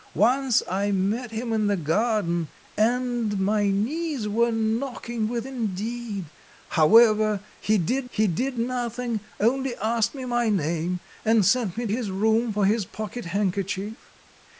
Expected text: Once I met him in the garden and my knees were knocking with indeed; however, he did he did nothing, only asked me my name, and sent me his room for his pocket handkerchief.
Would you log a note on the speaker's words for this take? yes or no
no